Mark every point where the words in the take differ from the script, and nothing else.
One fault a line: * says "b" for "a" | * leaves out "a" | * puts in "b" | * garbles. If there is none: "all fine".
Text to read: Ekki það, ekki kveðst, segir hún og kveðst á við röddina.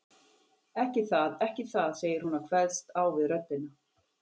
* says "það" for "kveðst"